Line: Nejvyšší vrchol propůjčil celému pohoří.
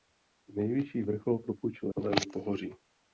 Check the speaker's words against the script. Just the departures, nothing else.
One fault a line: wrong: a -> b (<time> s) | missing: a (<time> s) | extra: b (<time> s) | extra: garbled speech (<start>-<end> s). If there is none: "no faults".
no faults